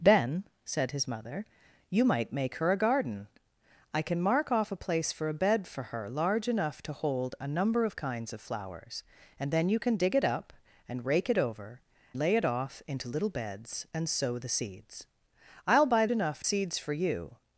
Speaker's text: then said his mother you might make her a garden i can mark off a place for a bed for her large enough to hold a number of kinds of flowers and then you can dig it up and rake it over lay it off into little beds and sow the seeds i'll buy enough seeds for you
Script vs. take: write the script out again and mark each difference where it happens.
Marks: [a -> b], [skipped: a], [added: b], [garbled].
then said his mother you might make her a garden i can mark off a place for a bed for her large enough to hold a number of kinds of flowers and then you can dig it up and rake it over lay it off into little beds and sow the seeds i'll buy enough seeds for you